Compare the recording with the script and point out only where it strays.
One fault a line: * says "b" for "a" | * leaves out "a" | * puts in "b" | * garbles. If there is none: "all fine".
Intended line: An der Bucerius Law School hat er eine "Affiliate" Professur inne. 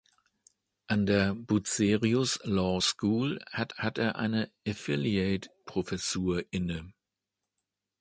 * puts in "hat"